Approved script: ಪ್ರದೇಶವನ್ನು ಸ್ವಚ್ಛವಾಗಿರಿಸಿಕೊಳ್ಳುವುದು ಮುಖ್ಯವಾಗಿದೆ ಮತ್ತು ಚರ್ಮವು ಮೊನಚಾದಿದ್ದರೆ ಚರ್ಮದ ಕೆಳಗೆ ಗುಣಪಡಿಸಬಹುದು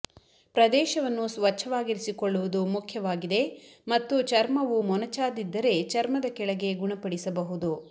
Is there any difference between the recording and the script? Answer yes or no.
no